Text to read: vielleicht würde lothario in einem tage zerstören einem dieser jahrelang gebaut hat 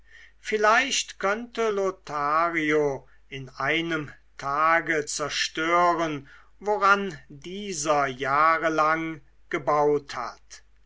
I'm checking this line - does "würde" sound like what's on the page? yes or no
no